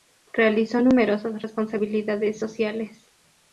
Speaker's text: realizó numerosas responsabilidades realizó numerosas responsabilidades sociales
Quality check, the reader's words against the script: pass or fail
fail